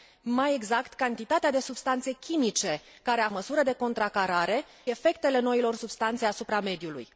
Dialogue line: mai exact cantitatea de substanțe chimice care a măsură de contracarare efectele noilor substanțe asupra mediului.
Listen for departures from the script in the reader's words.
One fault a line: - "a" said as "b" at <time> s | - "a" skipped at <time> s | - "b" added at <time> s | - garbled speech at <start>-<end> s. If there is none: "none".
none